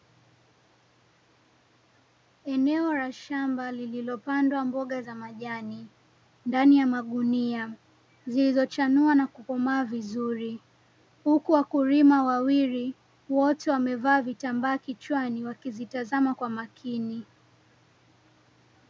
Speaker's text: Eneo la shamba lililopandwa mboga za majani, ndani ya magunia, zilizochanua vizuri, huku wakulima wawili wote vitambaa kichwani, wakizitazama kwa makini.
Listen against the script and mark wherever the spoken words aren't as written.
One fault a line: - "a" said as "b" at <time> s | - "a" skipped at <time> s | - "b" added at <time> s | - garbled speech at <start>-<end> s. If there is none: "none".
- "na kukomaa" added at 9.2 s
- "wamevaa" added at 13.7 s